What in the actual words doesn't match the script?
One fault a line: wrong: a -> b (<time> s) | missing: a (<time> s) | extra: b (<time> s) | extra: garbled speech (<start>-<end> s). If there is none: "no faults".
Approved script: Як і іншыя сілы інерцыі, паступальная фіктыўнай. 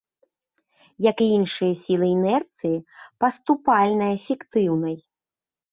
no faults